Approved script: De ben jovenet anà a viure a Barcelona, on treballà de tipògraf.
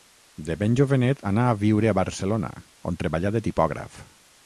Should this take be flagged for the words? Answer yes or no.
no